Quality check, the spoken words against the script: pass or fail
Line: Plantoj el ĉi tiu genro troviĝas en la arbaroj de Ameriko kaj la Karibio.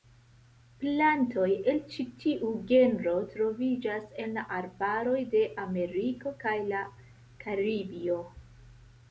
pass